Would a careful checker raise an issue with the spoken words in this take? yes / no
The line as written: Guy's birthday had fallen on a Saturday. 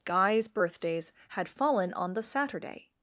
yes